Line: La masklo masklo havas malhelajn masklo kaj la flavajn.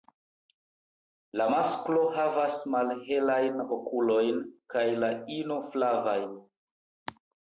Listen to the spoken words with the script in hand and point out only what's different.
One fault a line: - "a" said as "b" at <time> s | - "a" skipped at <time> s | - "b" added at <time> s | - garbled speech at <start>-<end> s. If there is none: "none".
- "masklo" skipped at 2.0 s
- "masklo" said as "okulojn" at 3.8 s
- "ino" added at 5.4 s